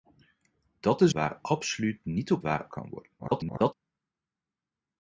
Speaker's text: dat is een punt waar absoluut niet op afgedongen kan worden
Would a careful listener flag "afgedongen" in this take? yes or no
yes